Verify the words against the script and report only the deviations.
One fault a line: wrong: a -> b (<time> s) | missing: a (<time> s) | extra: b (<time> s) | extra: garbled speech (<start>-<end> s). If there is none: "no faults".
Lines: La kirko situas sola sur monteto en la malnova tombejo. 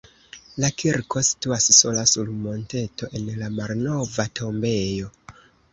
no faults